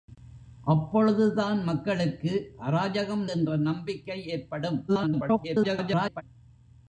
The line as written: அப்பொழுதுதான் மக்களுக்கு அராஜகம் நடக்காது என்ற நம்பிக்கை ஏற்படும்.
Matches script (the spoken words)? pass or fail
fail